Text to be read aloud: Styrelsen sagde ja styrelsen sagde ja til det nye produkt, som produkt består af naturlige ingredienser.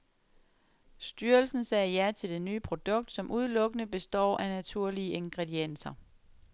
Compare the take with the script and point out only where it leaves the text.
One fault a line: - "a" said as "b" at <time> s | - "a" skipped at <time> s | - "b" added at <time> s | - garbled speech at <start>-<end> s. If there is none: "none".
- "styrelsen sagde ja" skipped at 2.1 s
- "produkt" said as "udelukkende" at 3.3 s